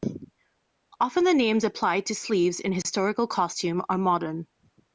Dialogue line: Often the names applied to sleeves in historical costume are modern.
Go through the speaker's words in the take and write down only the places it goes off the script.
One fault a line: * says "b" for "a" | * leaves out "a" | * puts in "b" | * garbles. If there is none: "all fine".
all fine